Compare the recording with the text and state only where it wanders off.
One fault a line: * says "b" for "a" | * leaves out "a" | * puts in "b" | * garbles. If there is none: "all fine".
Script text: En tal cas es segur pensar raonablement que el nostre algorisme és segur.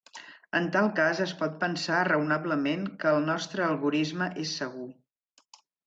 * says "pot" for "segur"